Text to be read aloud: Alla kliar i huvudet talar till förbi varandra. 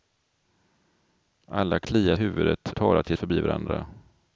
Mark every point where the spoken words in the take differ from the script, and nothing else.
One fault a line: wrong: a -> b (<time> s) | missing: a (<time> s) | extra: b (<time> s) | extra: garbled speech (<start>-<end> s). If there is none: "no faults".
no faults